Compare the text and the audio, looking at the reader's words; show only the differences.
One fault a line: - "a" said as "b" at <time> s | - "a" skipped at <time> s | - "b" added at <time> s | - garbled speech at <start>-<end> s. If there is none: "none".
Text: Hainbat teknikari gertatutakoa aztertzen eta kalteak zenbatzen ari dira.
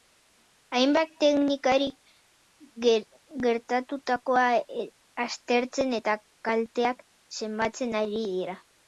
none